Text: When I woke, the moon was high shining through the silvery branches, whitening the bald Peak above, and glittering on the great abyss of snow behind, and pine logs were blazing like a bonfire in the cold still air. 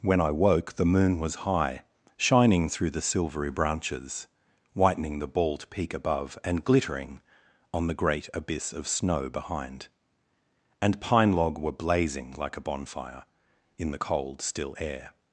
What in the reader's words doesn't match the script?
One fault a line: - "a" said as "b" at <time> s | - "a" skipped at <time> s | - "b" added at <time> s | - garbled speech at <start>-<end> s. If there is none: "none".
- "logs" said as "log" at 11.3 s